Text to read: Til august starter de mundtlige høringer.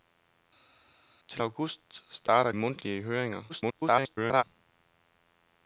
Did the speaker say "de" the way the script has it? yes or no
no